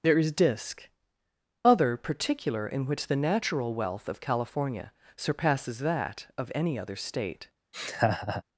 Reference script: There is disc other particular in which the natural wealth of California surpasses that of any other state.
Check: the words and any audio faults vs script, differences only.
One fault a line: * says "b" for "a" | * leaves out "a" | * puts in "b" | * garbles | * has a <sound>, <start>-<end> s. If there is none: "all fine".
* has a laugh, 7.7-8.4 s